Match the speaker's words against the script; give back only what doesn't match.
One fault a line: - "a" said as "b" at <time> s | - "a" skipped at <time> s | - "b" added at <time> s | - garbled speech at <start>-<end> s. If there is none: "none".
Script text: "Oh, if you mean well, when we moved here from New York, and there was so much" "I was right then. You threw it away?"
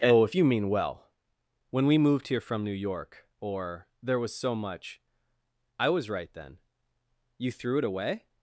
- "and" said as "or" at 3.4 s